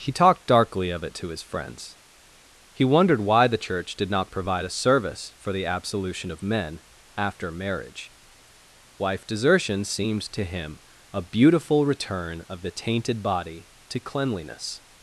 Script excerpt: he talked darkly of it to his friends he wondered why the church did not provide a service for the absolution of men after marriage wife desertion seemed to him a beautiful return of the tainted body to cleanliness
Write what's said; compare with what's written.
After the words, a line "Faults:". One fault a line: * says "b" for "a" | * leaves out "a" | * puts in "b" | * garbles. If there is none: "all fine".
he talked darkly of it to his friends he wondered why the church did not provide a service for the absolution of men after marriage wife desertion seemed to him a beautiful return of the tainted body to cleanliness
Faults:
all fine